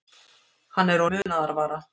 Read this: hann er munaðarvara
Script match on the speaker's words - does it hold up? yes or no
yes